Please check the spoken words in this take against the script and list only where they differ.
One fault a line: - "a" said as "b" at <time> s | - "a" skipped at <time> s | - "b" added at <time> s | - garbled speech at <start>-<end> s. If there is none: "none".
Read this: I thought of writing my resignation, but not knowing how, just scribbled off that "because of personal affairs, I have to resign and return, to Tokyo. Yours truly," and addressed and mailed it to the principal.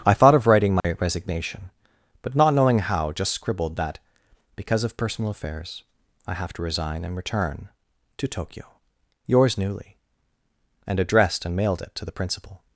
- "off" skipped at 3.8 s
- "truly" said as "newly" at 9.6 s